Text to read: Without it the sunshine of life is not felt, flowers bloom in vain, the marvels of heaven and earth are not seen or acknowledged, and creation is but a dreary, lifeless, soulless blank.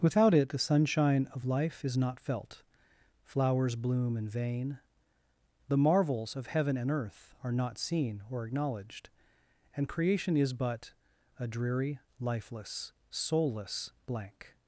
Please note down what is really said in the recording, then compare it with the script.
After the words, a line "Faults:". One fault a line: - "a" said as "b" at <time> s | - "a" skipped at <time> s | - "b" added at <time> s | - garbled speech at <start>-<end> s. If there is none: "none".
Without it the sunshine of life is not felt, flowers bloom in vain, the marvels of heaven and earth are not seen or acknowledged, and creation is but a dreary, lifeless, soulless blank.
Faults:
none